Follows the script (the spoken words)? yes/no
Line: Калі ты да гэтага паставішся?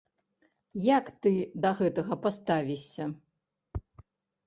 no